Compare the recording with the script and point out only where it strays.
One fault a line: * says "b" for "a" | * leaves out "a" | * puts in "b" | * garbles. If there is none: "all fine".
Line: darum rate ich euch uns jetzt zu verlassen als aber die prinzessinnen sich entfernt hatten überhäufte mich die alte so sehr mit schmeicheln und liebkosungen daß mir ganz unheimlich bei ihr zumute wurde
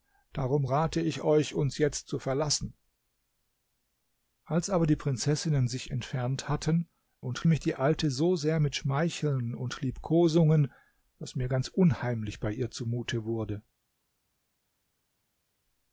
* says "und" for "überhäufte"